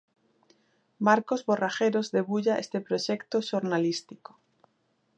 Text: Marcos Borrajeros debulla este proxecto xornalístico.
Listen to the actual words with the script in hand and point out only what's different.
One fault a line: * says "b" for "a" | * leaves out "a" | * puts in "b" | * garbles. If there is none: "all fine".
all fine